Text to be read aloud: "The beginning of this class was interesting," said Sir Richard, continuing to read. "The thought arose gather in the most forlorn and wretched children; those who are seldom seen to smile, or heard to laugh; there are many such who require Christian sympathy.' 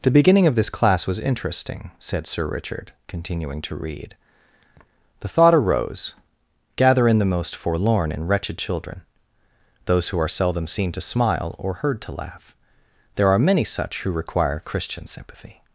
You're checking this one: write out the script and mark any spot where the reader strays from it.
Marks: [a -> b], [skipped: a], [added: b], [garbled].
"The beginning of this class was interesting," said Sir Richard, continuing to read. "The thought arose gather in the most forlorn and wretched children; those who are seldom seen to smile, or heard to laugh; there are many such who require Christian sympathy.'